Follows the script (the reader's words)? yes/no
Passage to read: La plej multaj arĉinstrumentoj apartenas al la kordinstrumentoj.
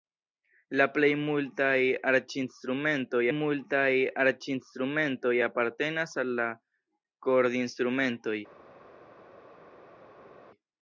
no